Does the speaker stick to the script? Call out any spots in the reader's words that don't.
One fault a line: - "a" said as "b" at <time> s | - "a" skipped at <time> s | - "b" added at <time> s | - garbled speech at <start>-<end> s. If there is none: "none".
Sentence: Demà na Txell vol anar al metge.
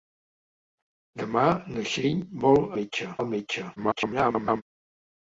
- "anar" said as "metge" at 2.8 s
- garbled speech at 3.8-4.6 s